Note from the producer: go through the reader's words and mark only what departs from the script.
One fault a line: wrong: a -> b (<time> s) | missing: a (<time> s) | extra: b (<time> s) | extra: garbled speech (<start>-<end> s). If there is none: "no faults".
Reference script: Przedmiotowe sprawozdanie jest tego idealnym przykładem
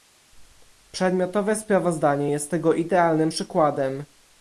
no faults